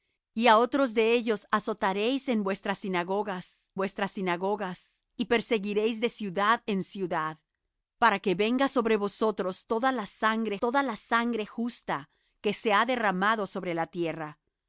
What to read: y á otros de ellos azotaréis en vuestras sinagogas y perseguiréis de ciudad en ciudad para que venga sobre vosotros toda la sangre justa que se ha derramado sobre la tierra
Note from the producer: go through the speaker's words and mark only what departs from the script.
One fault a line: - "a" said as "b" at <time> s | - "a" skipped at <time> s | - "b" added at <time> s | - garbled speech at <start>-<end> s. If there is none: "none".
- "vuestras sinagogas" added at 3.8 s
- "toda la sangre" added at 10.6 s